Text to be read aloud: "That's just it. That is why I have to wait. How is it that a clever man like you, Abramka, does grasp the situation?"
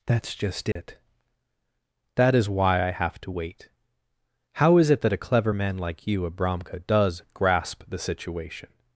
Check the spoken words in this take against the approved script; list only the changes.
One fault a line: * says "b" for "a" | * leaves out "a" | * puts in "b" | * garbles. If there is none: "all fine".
all fine